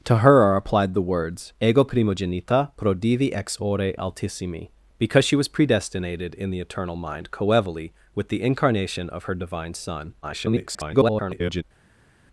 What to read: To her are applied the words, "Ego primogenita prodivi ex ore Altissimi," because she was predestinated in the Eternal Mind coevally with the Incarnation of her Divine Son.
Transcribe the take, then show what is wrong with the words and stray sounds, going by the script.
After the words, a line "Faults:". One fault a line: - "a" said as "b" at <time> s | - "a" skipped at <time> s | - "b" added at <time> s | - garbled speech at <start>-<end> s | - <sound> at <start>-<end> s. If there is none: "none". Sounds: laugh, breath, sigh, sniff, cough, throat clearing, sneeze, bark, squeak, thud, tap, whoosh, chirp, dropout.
To her are applied the words, "Ego primogenita prodivi ex ore Altissimi," because she was predestinated in the Eternal Mind coevally with the Incarnation of her Divine Son. [garbled]
Faults:
- garbled speech at 10.2-11.6 s